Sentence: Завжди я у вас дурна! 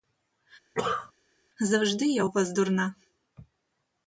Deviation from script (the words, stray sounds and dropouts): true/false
true